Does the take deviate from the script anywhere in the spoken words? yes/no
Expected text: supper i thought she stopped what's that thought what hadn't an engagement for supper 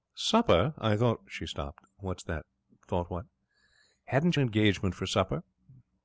no